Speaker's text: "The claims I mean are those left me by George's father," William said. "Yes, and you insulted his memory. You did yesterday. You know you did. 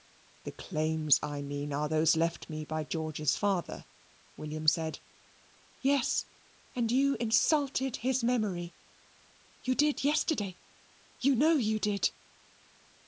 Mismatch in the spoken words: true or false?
false